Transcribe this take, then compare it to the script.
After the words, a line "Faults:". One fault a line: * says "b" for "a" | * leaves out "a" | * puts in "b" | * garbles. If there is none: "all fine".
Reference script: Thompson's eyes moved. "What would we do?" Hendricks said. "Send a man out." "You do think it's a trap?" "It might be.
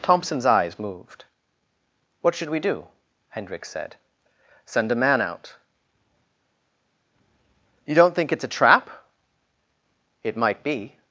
Thompson's eyes moved. "What should we do?" Hendricks said. "Send a man out." "You don't think it's a trap?" "It might be.
Faults:
* says "should" for "would"
* says "don't" for "do"